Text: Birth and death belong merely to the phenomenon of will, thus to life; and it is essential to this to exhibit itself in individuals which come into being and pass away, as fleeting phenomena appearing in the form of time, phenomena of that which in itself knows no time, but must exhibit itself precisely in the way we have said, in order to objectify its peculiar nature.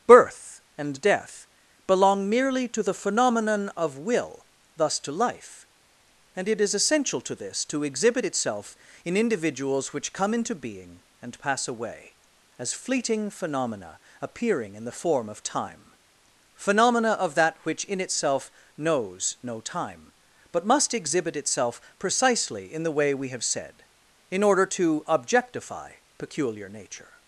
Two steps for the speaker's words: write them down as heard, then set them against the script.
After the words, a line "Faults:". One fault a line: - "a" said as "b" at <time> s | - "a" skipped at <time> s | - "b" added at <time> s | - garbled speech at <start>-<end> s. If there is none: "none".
Birth and death belong merely to the phenomenon of will, thus to life; and it is essential to this to exhibit itself in individuals which come into being and pass away, as fleeting phenomena appearing in the form of time, phenomena of that which in itself knows no time, but must exhibit itself precisely in the way we have said, in order to objectify peculiar nature.
Faults:
- "its" skipped at 25.9 s